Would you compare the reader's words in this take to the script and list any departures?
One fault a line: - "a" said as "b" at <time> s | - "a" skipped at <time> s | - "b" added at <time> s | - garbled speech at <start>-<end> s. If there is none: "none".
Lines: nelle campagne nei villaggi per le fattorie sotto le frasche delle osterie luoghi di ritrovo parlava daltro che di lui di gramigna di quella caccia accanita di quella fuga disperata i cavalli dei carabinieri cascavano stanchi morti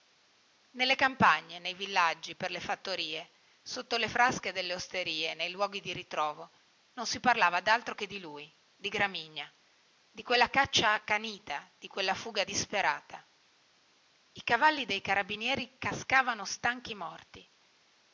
- "nei" added at 5.3 s
- "non si" added at 6.9 s